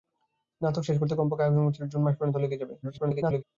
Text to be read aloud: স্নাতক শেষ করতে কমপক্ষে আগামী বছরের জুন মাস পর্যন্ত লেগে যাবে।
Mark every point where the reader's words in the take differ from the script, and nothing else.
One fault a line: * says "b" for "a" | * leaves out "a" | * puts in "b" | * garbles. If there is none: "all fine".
* garbles